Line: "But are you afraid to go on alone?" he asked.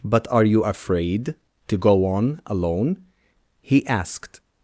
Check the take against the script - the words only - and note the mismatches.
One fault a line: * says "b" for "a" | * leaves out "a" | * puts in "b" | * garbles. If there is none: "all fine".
all fine